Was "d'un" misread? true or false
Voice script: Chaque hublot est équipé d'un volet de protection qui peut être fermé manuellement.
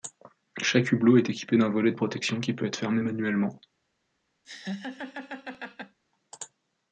false